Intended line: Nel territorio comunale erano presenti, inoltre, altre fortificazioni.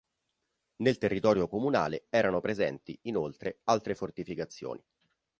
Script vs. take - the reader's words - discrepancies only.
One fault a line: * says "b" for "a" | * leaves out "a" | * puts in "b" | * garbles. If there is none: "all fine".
all fine